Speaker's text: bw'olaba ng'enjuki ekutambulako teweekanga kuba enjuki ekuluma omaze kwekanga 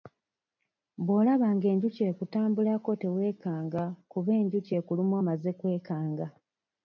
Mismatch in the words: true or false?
false